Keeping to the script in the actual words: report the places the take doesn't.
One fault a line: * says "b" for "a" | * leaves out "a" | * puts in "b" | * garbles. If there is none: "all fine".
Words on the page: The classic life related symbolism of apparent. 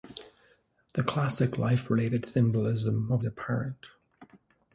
all fine